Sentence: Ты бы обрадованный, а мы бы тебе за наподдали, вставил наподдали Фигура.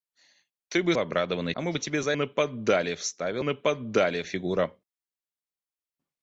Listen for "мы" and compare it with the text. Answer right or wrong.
right